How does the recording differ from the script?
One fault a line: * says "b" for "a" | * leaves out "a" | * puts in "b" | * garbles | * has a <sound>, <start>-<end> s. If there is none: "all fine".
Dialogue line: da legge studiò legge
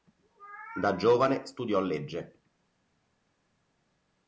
* says "giovane" for "legge"